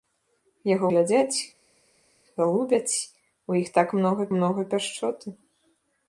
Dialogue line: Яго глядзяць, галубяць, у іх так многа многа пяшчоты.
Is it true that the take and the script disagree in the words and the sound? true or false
false